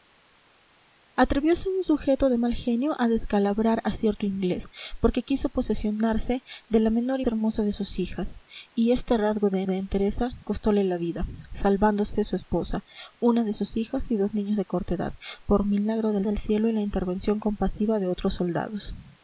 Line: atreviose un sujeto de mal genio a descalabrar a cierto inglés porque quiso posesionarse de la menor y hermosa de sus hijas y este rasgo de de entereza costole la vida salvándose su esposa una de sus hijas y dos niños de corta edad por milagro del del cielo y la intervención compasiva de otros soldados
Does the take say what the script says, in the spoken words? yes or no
yes